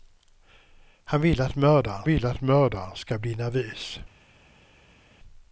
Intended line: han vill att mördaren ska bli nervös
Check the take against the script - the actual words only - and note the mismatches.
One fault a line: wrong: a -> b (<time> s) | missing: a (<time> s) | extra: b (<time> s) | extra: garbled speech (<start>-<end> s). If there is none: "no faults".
extra: vill att mördaren (2.0 s)